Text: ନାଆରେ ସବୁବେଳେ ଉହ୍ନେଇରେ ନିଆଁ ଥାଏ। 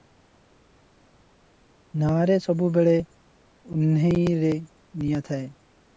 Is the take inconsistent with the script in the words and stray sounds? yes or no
no